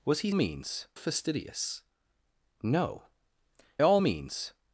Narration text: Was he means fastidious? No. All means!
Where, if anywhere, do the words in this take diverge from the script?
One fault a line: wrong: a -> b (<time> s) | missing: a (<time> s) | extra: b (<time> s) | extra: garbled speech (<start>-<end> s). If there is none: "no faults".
no faults